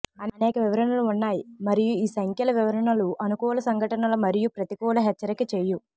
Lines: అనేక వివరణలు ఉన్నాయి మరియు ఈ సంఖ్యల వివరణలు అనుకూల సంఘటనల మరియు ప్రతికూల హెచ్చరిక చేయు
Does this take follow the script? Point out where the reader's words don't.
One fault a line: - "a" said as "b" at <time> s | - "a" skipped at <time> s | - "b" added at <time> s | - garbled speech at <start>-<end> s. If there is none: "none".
none